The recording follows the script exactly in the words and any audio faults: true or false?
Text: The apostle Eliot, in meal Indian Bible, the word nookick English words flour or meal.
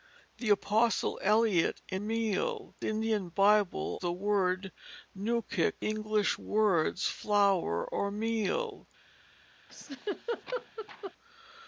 false